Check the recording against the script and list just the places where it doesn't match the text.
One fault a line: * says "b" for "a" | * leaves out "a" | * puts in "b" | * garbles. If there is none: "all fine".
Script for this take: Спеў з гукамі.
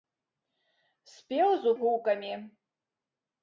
all fine